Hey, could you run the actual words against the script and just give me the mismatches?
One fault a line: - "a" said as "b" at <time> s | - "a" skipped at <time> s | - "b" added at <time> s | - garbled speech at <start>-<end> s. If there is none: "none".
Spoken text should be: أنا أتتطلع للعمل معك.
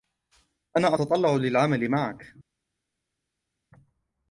none